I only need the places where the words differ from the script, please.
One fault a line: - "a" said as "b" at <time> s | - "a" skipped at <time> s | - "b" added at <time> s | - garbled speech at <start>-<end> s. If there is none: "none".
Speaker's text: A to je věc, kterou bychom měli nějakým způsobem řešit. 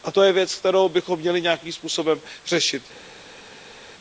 none